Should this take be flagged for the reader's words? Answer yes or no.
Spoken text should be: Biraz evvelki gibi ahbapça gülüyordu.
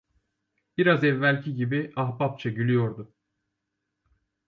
no